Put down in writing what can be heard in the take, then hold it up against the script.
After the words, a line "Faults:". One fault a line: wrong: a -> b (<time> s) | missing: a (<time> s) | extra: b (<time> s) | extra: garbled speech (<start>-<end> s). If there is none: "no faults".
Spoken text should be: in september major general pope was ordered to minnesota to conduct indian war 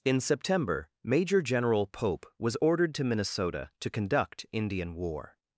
in september major general pope was ordered to minnesota to conduct indian war
Faults:
no faults